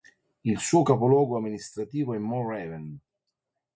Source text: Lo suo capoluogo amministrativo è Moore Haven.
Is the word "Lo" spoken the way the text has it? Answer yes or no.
no